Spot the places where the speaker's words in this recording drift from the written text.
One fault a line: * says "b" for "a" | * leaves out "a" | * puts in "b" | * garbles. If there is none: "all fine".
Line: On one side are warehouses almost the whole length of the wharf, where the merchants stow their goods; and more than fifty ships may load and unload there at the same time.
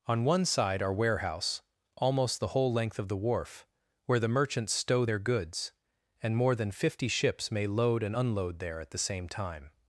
* says "warehouse" for "warehouses"